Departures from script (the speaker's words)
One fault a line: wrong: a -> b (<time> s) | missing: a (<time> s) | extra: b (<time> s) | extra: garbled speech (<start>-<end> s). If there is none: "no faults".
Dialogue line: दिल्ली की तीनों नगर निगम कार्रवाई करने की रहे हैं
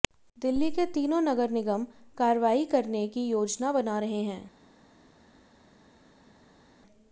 wrong: की -> के (0.7 s)
extra: योजना बना (3.3 s)